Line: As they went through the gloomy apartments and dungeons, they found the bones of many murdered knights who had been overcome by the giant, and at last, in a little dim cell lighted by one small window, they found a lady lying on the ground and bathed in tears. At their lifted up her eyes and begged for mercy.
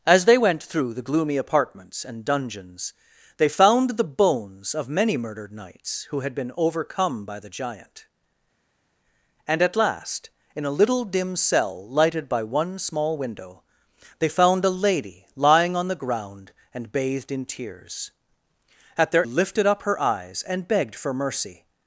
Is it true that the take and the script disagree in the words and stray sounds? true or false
false